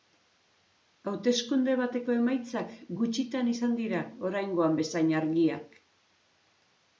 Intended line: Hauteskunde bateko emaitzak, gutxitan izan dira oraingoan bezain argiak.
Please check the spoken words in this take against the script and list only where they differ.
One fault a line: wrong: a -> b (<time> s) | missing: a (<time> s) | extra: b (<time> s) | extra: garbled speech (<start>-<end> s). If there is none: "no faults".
no faults